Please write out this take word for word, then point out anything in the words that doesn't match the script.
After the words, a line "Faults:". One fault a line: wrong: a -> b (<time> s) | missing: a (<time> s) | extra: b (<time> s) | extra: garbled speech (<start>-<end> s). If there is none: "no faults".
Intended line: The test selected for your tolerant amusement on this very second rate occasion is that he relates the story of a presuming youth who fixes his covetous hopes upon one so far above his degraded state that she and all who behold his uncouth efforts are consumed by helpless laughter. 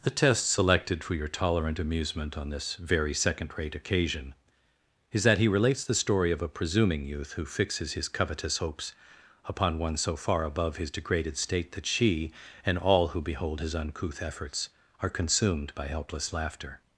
The test selected for your tolerant amusement on this very second rate occasion is that he relates the story of a presuming youth who fixes his covetous hopes upon one so far above his degraded state that she and all who behold his uncouth efforts are consumed by helpless laughter.
Faults:
no faults